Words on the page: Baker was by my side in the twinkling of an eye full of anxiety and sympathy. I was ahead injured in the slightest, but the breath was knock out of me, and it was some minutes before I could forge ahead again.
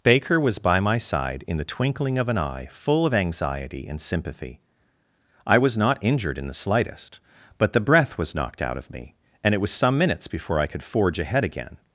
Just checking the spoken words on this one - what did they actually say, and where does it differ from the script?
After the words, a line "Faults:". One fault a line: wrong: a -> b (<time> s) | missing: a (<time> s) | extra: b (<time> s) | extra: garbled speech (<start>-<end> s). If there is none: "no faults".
Baker was by my side in the twinkling of an eye full of anxiety and sympathy. I was not injured in the slightest, but the breath was knocked out of me, and it was some minutes before I could forge ahead again.
Faults:
wrong: ahead -> not (5.8 s)
wrong: knock -> knocked (8.3 s)